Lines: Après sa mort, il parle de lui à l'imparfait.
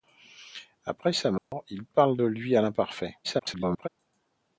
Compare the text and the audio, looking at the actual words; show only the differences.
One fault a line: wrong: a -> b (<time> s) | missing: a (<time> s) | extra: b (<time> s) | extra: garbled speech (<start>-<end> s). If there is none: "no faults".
extra: garbled speech (3.2-3.9 s)